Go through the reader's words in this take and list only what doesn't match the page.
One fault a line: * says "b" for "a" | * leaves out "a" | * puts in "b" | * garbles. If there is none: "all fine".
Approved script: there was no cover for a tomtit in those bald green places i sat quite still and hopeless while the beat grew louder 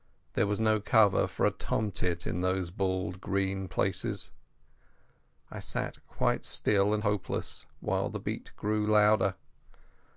all fine